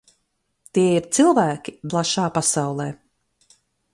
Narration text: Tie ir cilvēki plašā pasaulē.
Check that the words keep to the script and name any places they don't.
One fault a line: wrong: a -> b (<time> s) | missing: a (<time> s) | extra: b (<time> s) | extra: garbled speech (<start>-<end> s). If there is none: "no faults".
no faults